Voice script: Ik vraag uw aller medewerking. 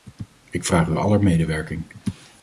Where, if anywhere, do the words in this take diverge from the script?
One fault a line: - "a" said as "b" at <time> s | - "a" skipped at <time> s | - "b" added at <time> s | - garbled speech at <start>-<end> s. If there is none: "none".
none